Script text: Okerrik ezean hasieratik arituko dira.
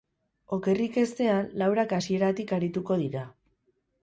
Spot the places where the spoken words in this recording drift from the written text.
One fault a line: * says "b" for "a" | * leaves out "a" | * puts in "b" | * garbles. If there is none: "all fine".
* puts in "laurak"